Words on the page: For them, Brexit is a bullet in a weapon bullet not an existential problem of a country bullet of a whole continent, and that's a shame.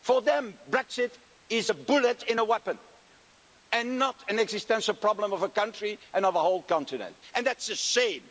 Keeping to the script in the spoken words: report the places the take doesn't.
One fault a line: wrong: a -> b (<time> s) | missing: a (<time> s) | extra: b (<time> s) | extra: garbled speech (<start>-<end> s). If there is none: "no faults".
wrong: bullet -> and (3.7 s)
wrong: bullet -> and (6.1 s)